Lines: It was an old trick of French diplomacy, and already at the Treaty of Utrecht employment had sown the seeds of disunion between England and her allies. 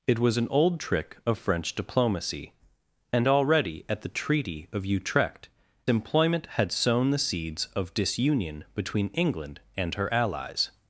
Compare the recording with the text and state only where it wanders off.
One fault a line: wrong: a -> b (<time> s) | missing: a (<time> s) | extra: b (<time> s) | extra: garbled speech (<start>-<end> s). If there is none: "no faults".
no faults